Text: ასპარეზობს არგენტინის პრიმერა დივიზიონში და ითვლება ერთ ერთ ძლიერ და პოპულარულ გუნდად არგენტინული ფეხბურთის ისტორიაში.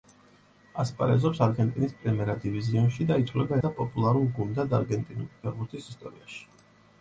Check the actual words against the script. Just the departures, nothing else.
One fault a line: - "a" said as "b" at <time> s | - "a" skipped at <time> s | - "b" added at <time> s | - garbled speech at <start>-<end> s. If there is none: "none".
- "ერთ ერთ ძლიერ" skipped at 3.6 s